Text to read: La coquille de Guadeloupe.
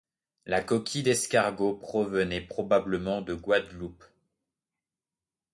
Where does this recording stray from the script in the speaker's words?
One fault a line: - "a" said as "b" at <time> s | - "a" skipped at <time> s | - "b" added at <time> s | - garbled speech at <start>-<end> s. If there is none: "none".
- "d'escargot provenait probablement" added at 1.0 s